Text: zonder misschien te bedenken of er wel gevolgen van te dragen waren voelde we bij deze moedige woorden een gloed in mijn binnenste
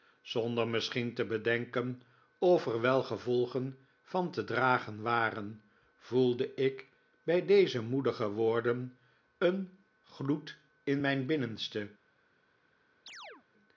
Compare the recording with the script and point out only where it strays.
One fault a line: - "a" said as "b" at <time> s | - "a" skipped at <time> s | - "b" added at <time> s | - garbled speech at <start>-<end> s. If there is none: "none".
- "we" said as "ik" at 6.5 s